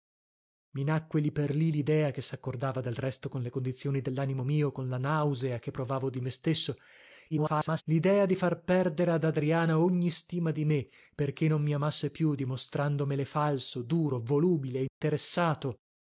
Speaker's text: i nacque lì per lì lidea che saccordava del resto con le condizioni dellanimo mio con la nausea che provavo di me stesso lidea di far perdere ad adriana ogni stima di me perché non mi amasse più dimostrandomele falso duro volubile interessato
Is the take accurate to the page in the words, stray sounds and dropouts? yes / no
no